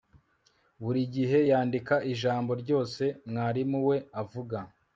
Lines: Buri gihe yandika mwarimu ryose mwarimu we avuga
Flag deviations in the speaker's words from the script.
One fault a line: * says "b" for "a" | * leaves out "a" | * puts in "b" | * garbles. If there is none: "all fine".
* says "ijambo" for "mwarimu"